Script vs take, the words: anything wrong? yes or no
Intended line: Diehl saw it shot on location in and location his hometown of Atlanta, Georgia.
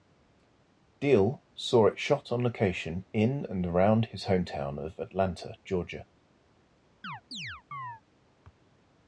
yes